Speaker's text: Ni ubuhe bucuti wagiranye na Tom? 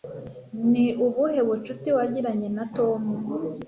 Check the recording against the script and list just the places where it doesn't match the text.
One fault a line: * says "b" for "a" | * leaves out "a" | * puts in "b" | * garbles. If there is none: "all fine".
all fine